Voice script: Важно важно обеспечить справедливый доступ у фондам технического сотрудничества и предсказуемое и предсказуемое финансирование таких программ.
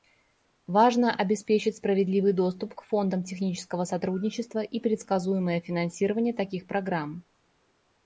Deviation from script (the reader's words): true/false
true